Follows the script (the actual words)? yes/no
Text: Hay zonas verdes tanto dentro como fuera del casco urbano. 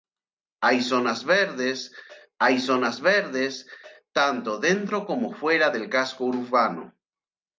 no